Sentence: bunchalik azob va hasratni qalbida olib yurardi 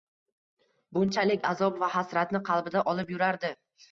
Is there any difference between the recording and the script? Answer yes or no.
no